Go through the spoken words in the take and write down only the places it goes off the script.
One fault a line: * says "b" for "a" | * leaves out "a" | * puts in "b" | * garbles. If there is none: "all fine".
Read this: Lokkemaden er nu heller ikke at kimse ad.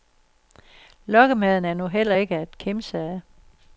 all fine